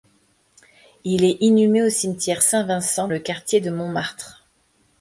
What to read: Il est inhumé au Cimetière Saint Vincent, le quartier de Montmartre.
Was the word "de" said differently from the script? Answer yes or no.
no